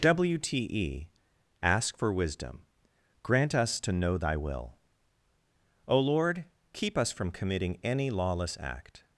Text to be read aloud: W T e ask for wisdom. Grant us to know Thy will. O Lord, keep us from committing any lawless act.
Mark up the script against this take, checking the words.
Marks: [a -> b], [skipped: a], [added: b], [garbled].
W T e ask for wisdom. Grant us to know Thy will. O Lord, keep us from committing any lawless act.